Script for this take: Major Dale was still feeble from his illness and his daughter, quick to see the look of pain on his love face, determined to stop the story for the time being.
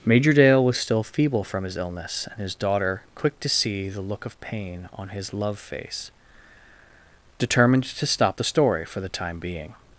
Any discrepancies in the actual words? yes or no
no